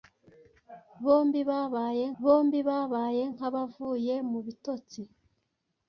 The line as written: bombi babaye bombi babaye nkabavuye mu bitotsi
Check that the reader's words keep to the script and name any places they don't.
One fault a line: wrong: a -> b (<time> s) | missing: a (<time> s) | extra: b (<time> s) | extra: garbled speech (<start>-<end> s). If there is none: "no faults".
no faults